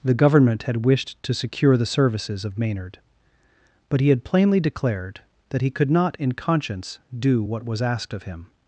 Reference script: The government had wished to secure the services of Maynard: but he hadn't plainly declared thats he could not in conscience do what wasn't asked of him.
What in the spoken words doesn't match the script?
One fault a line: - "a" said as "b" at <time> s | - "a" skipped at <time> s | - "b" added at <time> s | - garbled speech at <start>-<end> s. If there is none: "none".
- "hadn't" said as "had" at 4.1 s
- "thats" said as "that" at 5.5 s
- "wasn't" said as "was" at 7.6 s